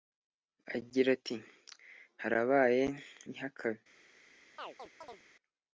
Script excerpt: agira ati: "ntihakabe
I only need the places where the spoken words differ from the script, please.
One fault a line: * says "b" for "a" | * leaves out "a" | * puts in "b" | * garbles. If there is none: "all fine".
* puts in "harabaye"